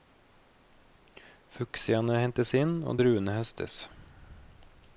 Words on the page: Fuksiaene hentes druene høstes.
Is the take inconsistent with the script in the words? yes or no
yes